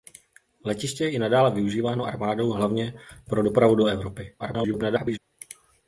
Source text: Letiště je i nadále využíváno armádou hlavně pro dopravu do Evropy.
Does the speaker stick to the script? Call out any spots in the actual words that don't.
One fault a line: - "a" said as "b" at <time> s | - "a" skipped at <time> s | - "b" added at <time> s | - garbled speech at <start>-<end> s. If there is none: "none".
- garbled speech at 4.4-5.2 s